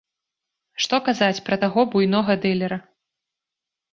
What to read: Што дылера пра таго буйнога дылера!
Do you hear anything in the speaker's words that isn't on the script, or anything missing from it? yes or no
yes